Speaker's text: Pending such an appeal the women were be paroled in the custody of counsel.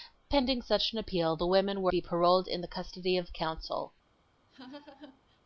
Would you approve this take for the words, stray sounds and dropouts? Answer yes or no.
no